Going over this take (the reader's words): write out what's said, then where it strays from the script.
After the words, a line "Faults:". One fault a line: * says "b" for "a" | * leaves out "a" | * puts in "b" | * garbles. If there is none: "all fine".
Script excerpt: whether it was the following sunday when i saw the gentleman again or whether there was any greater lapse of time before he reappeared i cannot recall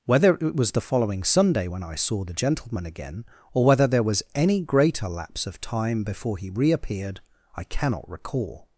whether it was the following sunday when i saw the gentleman again or whether there was any greater lapse of time before he reappeared i cannot recall
Faults:
all fine